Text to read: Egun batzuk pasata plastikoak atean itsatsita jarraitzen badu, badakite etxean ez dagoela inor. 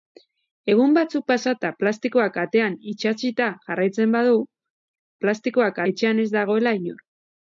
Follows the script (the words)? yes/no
no